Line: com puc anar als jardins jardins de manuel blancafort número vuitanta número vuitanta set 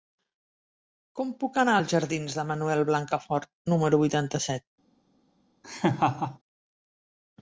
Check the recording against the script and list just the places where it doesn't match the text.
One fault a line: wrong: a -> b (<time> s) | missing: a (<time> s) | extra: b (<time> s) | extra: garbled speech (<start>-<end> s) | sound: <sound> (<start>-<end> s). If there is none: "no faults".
missing: jardins (2.4 s)
missing: número vuitanta (4.5 s)
sound: laugh (5.6-6.4 s)